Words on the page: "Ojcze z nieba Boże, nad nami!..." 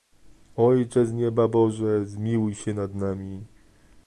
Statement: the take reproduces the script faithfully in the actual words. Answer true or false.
false